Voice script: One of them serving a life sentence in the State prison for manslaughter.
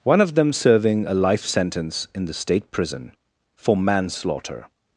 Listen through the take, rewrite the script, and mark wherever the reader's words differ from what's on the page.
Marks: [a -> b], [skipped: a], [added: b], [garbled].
One of them serving a life sentence in the State prison for manslaughter.